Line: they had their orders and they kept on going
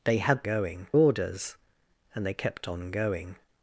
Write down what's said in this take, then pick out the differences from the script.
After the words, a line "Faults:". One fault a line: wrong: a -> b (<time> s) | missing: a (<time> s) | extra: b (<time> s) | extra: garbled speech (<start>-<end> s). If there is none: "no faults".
they had going orders and they kept on going
Faults:
wrong: their -> going (0.4 s)